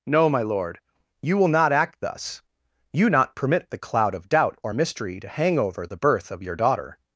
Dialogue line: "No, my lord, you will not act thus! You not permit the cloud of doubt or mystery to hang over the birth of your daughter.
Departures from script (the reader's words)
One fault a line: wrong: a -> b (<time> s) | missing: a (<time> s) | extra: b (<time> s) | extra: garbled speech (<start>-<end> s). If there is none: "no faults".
no faults